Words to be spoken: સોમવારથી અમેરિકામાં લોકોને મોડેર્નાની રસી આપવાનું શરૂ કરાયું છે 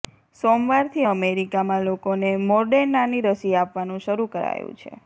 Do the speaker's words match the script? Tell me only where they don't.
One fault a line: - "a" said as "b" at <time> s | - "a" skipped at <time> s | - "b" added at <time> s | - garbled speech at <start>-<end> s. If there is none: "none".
none